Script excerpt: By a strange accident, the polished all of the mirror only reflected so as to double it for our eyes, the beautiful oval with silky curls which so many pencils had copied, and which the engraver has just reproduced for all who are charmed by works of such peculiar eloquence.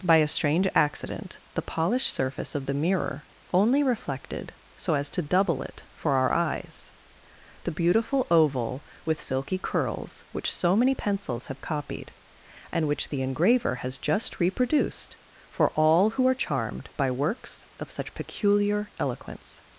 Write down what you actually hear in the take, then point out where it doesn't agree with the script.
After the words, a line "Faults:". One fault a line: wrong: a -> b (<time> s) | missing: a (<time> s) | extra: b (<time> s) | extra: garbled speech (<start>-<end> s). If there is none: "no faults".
By a strange accident, the polished surface of the mirror only reflected so as to double it for our eyes, the beautiful oval with silky curls which so many pencils have copied, and which the engraver has just reproduced for all who are charmed by works of such peculiar eloquence.
Faults:
wrong: all -> surface (2.1 s)
wrong: had -> have (11.5 s)